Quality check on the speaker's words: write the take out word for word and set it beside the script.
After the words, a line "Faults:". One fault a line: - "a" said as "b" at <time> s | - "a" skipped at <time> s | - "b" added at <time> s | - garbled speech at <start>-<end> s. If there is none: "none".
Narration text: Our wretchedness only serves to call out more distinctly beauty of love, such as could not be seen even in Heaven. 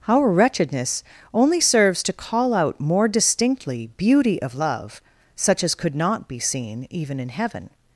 Our wretchedness only serves to call out more distinctly beauty of love, such as could not be seen even in Heaven.
Faults:
none